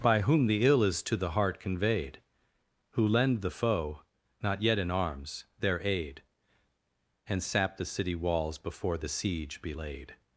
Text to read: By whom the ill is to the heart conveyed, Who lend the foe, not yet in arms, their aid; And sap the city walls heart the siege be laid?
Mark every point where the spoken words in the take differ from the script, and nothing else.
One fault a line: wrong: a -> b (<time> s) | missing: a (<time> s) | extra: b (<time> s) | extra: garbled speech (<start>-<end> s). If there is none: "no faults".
wrong: heart -> before (8.6 s)